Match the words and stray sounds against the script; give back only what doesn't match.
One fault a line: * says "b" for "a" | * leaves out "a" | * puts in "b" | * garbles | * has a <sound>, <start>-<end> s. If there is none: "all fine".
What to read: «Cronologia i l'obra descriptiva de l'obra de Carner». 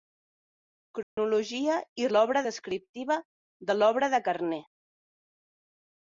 * has a dropout, 1.0-1.2 s